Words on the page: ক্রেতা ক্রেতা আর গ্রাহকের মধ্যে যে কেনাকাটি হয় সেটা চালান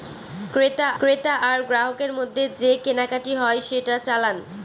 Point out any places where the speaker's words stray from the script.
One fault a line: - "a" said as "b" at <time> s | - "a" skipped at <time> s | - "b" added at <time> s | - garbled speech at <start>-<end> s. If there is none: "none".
none